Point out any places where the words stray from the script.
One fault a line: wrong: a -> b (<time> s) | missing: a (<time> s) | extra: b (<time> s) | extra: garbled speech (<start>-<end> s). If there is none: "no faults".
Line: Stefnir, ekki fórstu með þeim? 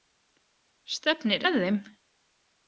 missing: ekki fórstu (1.4 s)